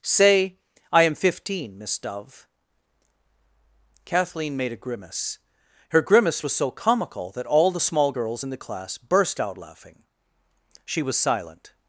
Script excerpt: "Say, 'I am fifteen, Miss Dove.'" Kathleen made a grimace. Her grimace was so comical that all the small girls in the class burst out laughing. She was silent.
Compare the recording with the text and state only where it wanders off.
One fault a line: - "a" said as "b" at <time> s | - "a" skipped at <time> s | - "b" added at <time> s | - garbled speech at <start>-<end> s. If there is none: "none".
none